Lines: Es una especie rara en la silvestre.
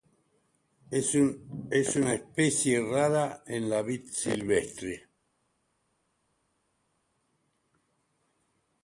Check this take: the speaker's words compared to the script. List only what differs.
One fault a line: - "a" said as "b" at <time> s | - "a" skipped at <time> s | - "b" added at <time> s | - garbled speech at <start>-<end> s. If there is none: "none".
- "vid" added at 3.8 s